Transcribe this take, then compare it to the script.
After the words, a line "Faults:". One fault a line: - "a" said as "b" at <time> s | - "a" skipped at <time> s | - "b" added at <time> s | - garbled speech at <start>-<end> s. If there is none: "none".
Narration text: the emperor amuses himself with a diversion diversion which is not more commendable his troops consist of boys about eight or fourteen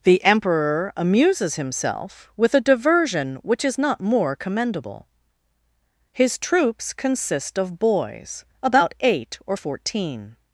the emperor amuses himself with a diversion which is not more commendable his troops consist of boys about eight or fourteen
Faults:
- "diversion" skipped at 3.4 s